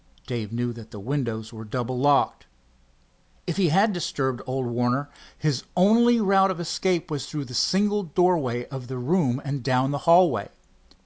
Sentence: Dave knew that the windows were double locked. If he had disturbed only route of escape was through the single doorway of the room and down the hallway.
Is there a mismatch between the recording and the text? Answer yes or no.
yes